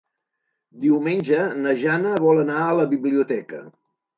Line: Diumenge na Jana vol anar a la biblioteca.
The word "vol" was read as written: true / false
true